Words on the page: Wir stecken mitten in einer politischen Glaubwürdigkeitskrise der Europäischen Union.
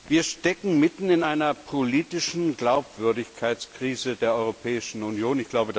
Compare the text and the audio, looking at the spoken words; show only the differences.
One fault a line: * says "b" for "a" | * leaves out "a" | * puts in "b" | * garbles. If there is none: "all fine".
all fine